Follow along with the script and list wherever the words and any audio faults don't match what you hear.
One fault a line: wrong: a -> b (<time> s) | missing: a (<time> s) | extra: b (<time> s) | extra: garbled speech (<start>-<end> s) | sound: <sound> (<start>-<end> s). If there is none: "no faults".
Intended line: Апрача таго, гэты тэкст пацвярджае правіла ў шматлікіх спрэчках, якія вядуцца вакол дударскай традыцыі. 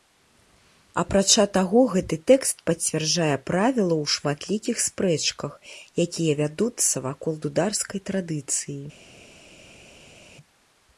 no faults